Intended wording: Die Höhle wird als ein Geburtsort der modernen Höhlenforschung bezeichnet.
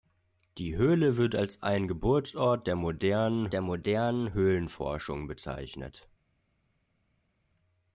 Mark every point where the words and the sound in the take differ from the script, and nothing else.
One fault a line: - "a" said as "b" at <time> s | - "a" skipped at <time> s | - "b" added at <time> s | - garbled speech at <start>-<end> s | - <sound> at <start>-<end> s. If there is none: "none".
- "der modernen" added at 3.5 s